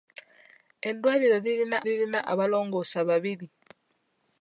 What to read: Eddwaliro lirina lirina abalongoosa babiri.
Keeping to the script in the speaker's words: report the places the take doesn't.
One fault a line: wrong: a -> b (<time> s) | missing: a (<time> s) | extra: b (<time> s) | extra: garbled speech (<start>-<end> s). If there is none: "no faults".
no faults